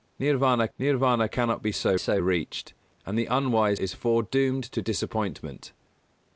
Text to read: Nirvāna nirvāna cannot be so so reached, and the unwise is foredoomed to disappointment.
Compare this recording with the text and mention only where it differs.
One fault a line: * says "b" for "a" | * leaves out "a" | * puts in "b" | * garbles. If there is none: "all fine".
all fine